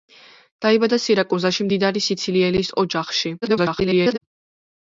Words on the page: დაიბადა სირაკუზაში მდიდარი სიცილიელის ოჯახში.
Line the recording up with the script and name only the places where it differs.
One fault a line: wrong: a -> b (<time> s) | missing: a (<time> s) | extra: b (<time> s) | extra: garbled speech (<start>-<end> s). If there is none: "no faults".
extra: garbled speech (3.4-4.2 s)